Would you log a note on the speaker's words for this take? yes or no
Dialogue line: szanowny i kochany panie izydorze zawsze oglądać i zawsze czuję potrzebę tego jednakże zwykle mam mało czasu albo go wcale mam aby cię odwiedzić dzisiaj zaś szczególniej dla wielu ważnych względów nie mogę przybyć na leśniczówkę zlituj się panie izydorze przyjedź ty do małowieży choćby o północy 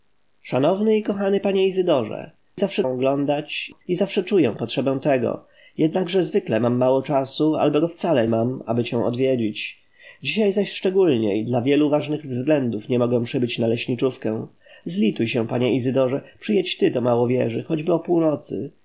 no